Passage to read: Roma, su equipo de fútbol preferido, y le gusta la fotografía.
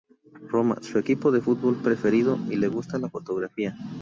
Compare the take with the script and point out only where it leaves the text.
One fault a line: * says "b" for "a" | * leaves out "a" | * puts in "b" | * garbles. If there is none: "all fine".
all fine